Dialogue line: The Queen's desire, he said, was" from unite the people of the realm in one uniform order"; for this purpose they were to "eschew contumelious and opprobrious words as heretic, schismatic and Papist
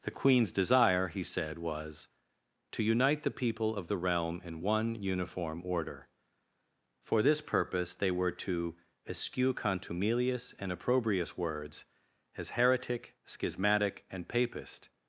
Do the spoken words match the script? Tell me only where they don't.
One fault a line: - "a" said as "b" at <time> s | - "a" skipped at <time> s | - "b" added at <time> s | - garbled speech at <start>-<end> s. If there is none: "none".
- "from" said as "to" at 2.7 s